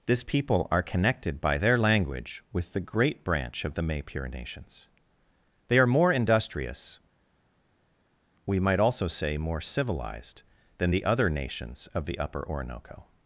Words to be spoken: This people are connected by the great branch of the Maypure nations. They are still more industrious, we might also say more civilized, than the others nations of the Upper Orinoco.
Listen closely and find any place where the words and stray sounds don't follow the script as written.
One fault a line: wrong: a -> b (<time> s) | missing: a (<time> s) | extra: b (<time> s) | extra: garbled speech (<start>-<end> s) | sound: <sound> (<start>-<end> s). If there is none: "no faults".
extra: their language with (1.6 s)
missing: still (5.9 s)
wrong: others -> other (11.0 s)